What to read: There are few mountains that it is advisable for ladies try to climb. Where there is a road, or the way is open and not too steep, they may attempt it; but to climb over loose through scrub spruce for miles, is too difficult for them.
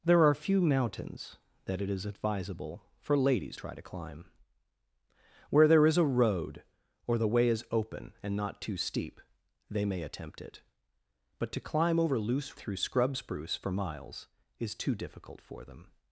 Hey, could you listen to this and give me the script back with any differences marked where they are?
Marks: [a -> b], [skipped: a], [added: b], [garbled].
There are few mountains that it is advisable for ladies try to climb. Where there is a road, or the way is open and not too steep, they may attempt it; but to climb over loose through scrub spruce for miles, is too difficult for them.